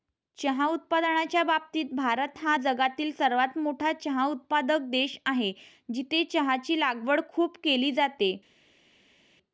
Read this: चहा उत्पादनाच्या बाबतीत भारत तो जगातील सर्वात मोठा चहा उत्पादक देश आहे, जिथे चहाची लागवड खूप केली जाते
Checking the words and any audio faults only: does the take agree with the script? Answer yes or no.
no